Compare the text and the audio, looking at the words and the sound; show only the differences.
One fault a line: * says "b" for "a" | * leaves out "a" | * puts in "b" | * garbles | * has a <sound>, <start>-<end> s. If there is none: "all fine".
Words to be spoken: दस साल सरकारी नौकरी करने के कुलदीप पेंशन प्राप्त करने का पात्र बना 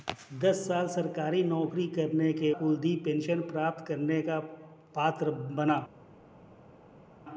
all fine